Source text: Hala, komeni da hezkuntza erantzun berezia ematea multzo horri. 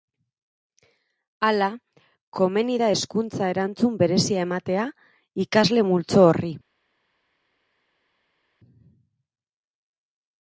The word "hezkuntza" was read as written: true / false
true